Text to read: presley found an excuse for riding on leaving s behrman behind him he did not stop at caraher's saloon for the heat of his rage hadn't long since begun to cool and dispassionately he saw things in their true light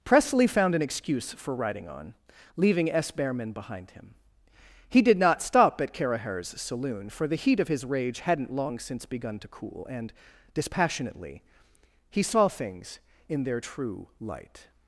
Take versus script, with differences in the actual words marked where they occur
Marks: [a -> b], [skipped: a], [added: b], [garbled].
presley found an excuse for riding on leaving s behrman behind him he did not stop at caraher's saloon for the heat of his rage hadn't long since begun to cool and dispassionately he saw things in their true light